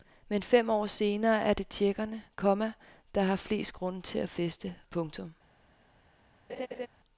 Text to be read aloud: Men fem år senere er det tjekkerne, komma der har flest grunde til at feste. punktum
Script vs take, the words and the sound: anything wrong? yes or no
yes